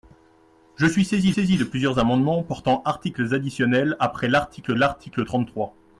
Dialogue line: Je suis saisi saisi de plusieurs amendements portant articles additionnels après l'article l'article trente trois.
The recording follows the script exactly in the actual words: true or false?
true